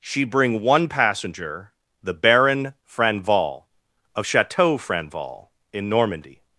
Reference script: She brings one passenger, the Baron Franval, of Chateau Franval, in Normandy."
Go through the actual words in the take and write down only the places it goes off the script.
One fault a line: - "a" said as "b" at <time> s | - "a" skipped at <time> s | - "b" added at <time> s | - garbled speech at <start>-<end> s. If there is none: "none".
- "brings" said as "bring" at 0.2 s